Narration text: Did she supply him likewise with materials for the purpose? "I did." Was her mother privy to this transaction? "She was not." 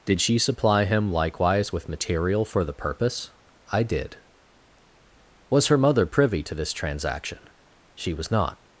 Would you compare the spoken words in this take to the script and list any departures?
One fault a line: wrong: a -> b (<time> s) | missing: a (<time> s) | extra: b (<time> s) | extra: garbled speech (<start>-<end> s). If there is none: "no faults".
wrong: materials -> material (1.9 s)